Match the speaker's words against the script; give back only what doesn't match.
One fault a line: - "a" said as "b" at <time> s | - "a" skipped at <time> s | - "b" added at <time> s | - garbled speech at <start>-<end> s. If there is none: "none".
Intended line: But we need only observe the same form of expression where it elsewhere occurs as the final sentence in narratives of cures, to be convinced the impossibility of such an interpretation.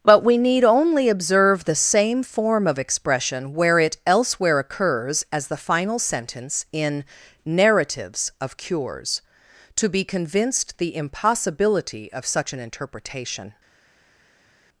none